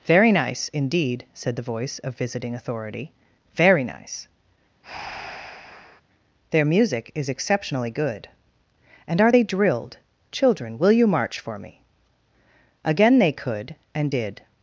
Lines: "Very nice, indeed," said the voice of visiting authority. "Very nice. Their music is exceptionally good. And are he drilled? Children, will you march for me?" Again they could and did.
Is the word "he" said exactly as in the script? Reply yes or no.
no